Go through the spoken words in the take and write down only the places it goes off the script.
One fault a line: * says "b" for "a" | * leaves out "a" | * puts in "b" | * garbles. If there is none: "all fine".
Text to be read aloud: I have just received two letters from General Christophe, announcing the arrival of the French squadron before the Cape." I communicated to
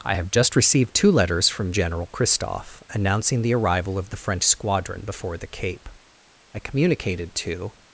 all fine